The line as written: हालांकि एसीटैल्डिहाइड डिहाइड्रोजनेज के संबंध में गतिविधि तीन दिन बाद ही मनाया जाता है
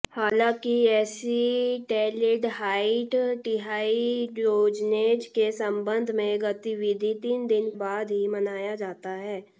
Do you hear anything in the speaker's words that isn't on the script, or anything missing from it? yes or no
no